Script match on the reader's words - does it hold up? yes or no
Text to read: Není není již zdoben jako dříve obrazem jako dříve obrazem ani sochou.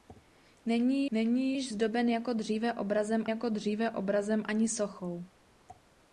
yes